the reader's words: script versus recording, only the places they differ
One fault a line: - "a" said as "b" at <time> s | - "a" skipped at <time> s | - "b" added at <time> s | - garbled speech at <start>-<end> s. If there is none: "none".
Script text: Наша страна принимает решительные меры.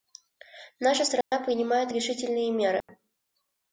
none